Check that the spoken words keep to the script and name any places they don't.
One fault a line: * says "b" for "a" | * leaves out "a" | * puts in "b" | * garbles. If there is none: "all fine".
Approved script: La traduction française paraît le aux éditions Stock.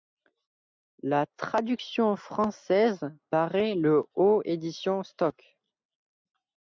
all fine